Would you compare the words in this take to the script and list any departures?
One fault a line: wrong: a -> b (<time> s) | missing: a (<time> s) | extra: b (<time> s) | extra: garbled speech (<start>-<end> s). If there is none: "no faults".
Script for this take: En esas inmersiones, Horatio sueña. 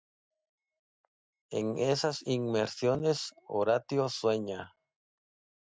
no faults